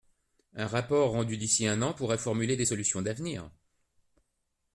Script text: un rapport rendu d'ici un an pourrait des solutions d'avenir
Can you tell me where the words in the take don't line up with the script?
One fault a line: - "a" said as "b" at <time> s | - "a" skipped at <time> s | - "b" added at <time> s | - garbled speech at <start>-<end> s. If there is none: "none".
- "formuler" added at 2.2 s